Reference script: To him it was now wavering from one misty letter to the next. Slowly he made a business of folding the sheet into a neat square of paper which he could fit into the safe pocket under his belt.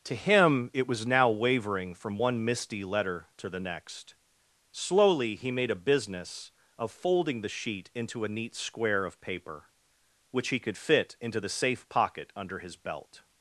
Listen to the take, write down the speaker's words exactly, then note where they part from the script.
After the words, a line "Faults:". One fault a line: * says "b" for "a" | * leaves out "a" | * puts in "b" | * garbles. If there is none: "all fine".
To him it was now wavering from one misty letter to the next. Slowly he made a business of folding the sheet into a neat square of paper which he could fit into the safe pocket under his belt.
Faults:
all fine